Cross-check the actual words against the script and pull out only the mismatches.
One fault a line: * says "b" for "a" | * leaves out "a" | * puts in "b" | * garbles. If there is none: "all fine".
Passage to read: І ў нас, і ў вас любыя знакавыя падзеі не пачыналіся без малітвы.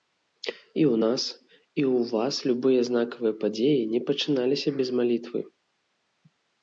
all fine